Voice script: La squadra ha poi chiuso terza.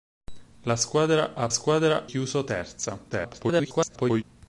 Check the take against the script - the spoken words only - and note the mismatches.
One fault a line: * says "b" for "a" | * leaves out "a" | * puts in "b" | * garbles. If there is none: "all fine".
* says "squadra" for "poi"
* garbles